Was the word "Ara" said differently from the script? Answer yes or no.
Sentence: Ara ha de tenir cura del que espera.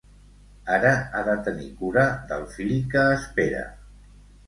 no